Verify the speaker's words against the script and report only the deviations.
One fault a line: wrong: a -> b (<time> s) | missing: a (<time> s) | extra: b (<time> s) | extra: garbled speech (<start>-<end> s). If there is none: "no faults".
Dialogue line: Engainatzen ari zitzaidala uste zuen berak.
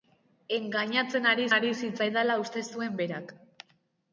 extra: ari (1.6 s)